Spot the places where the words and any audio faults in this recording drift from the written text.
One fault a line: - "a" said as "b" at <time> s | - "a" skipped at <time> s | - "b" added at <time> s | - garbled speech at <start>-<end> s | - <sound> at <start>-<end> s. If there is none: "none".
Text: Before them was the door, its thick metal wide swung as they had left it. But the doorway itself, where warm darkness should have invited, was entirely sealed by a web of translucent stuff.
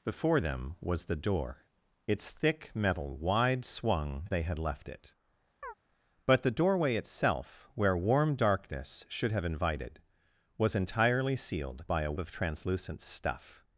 - "as" skipped at 4.3 s
- chirp at 5.6-5.7 s
- "web" skipped at 12.1 s